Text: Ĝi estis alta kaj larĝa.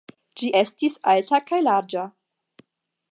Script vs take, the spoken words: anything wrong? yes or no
no